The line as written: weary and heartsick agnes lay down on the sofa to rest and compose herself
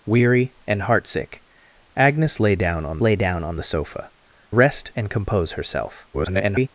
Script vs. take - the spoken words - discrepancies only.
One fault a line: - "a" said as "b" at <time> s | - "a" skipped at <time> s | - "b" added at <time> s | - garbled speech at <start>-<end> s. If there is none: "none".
- "lay down on" added at 3.0 s
- "to" skipped at 4.1 s
- garbled speech at 6.1-6.7 s